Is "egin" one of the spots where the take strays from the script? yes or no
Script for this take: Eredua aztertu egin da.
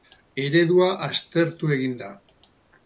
no